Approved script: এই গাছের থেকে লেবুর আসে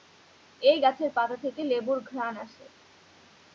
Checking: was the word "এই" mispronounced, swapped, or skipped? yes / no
no